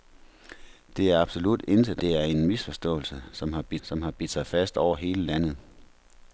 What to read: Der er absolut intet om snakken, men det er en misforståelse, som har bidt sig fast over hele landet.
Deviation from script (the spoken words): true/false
true